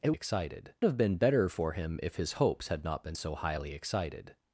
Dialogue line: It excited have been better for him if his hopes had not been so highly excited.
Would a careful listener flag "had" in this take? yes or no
no